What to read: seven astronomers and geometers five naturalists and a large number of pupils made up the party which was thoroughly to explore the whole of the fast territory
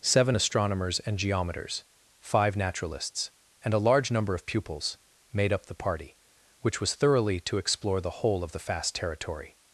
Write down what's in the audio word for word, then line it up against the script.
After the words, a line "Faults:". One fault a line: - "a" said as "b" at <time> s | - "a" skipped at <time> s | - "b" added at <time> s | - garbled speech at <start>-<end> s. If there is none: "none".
seven astronomers and geometers five naturalists and a large number of pupils made up the party which was thoroughly to explore the whole of the fast territory
Faults:
none